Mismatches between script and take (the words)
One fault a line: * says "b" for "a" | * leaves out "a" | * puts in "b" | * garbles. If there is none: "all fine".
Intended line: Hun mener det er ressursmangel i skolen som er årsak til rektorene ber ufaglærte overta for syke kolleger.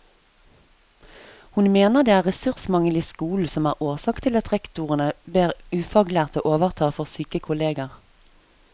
* puts in "at"